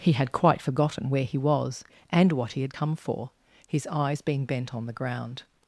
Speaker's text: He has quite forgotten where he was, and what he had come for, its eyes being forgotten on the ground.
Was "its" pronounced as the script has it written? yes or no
no